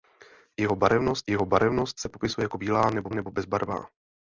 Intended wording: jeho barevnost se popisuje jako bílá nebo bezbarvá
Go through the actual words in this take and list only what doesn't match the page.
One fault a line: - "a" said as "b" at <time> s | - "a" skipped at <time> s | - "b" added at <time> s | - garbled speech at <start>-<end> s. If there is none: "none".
- "jeho barevnost" added at 1.3 s
- "nebo" added at 3.1 s